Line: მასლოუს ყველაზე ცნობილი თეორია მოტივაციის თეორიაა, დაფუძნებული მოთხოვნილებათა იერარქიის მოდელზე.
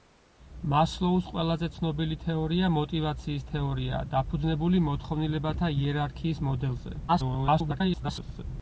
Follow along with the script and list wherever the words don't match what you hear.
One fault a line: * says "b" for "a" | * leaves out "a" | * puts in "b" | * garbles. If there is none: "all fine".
* garbles